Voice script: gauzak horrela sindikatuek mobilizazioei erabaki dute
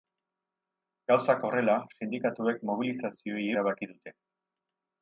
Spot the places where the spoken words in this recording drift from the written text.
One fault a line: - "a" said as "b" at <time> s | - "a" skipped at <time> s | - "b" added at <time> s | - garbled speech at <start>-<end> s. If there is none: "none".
none